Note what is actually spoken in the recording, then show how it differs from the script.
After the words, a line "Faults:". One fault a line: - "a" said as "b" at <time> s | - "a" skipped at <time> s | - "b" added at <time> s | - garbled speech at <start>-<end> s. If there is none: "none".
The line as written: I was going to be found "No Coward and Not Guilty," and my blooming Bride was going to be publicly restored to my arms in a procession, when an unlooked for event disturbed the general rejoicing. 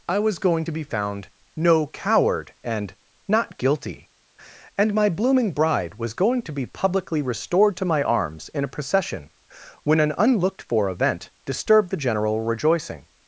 I was going to be found "No Coward and Not Guilty," and my blooming Bride was going to be publicly restored to my arms in a procession, when an unlooked for event disturbed the general rejoicing.
Faults:
none